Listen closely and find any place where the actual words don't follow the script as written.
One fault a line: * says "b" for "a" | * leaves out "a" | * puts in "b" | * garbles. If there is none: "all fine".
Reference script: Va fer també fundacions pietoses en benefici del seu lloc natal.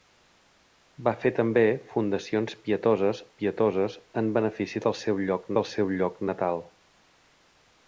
* puts in "pietoses"
* puts in "del seu lloc"